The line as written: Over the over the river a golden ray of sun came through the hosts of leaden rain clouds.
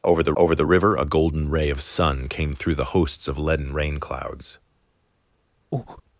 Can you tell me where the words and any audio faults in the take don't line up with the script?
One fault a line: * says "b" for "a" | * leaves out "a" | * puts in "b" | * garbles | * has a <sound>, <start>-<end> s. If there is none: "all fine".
* has a breath, 5.7-6.0 s